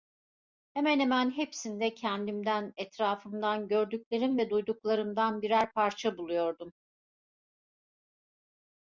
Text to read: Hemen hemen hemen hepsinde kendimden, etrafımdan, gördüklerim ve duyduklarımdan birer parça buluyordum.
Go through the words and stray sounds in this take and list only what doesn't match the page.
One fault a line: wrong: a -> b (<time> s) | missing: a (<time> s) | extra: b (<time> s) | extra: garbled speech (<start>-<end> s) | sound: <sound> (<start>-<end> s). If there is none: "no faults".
missing: hemen (1.3 s)